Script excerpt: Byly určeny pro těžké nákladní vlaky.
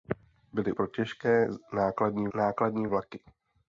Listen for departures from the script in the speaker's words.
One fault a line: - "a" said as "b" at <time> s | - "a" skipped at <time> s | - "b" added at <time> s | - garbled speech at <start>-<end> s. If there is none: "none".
- "určeny" skipped at 0.7 s
- "nákladní" added at 2.3 s